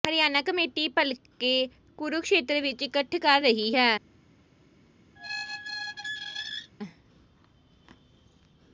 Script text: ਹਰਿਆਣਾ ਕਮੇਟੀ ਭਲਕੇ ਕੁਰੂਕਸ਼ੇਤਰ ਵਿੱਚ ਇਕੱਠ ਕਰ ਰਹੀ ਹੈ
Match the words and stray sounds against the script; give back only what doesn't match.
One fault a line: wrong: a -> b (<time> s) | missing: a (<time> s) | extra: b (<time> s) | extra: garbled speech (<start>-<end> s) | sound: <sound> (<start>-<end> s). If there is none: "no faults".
sound: squeak (5.2-6.7 s)